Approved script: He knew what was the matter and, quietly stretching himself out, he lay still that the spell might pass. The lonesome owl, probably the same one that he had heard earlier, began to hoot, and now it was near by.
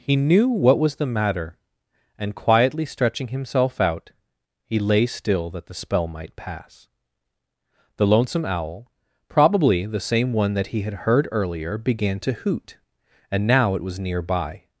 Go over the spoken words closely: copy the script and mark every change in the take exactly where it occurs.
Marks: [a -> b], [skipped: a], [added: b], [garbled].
He knew what was the matter and, quietly stretching himself out, he lay still that the spell might pass. The lonesome owl, probably the same one that he had heard earlier, began to hoot, and now it was near by.